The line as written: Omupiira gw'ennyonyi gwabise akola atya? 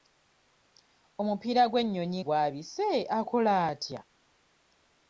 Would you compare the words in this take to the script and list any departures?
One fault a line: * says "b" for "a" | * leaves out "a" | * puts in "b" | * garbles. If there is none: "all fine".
all fine